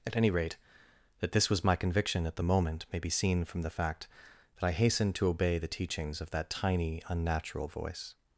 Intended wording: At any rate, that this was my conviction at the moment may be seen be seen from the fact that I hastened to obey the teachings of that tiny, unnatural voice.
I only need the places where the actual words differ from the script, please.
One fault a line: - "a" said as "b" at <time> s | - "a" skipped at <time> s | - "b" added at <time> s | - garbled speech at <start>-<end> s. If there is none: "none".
- "be seen" skipped at 3.4 s